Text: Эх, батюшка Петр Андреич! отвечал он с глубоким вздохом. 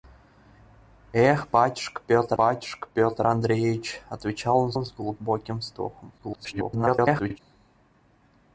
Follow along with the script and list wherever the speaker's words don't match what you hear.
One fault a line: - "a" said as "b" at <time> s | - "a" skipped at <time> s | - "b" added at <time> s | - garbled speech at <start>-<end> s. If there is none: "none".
- "батюшка Петр" added at 2.4 s
- "он" added at 4.7 s
- garbled speech at 6.2-7.4 s